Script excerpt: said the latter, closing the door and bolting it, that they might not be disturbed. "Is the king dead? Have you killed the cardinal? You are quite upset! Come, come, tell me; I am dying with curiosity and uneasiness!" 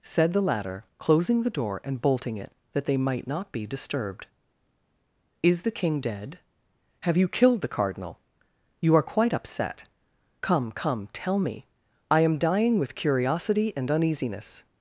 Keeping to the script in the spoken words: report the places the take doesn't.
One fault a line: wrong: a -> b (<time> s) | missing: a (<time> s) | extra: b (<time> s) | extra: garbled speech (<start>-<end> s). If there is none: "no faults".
no faults